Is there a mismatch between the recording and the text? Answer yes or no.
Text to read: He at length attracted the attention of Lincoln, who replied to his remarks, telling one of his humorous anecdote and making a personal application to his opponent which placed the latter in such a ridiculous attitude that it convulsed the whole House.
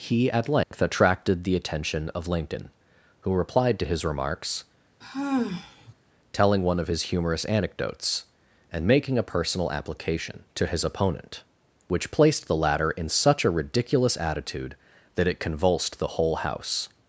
yes